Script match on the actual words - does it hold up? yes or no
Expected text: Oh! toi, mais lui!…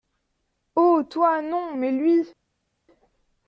no